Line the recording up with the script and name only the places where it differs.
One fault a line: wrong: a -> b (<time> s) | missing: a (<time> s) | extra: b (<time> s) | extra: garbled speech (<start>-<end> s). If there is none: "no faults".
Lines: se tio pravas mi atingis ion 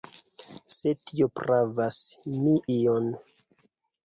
missing: atingis (2.6 s)